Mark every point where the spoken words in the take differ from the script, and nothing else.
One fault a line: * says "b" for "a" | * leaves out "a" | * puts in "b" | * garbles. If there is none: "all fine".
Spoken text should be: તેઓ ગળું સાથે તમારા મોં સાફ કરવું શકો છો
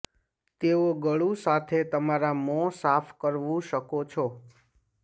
all fine